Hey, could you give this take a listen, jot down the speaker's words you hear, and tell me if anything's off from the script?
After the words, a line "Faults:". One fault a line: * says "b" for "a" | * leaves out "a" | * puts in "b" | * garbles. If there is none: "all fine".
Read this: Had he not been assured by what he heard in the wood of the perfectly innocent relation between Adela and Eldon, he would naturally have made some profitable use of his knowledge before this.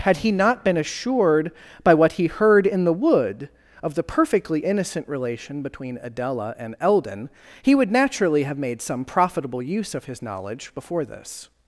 Had he not been assured by what he heard in the wood of the perfectly innocent relation between Adela and Eldon, he would naturally have made some profitable use of his knowledge before this.
Faults:
all fine